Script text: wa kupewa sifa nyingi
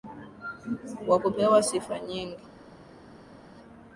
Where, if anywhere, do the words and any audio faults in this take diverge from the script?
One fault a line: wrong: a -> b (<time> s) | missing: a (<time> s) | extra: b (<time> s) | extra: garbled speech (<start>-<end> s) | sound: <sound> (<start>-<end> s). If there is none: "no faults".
no faults